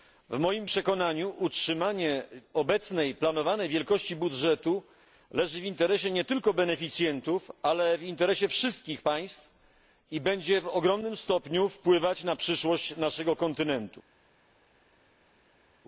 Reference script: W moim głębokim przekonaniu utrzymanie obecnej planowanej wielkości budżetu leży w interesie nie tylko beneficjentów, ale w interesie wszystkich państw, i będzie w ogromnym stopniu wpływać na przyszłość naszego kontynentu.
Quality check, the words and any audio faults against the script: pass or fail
fail